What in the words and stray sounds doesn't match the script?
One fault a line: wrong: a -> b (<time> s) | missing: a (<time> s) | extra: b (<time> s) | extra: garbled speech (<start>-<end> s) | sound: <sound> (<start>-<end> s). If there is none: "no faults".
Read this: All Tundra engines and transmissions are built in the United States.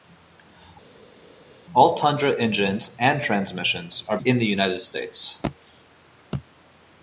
missing: built (4.2 s)